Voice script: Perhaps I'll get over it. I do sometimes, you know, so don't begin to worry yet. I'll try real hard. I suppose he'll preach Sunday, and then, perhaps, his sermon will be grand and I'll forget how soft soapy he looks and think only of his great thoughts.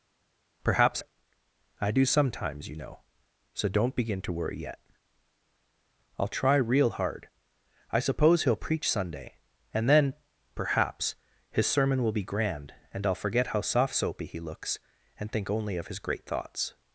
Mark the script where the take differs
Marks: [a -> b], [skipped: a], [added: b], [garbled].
Perhaps [skipped: I'll get over] it. I do sometimes, you know, so don't begin to worry yet. I'll try real hard. I suppose he'll preach Sunday, and then, perhaps, his sermon will be grand and I'll forget how soft soapy he looks and think only of his great thoughts.